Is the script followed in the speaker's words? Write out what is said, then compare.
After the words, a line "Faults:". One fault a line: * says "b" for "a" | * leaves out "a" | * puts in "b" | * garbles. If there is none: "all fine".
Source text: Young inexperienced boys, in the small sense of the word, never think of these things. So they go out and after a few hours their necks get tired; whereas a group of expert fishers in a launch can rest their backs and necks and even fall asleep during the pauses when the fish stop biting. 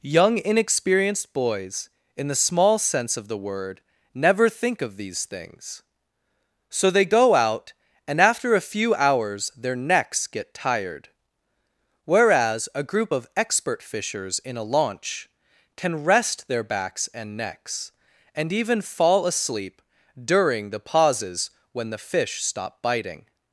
Young inexperienced boys, in the small sense of the word, never think of these things. So they go out and after a few hours their necks get tired; whereas a group of expert fishers in a launch can rest their backs and necks and even fall asleep during the pauses when the fish stop biting.
Faults:
all fine